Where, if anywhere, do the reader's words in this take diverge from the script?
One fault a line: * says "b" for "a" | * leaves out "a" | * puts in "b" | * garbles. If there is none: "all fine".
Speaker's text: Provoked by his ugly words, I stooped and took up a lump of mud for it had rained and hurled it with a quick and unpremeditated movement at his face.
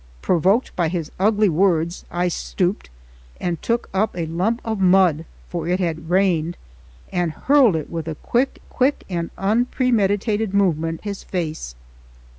* puts in "quick"
* leaves out "at"